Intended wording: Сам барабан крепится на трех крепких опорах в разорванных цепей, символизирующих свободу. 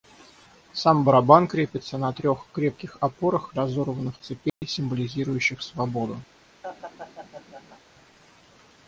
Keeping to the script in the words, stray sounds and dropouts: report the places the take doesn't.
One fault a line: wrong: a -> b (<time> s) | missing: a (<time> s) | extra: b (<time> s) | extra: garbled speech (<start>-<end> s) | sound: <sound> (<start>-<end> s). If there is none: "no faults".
sound: dropout (4.5-4.6 s)
sound: laugh (6.6-7.8 s)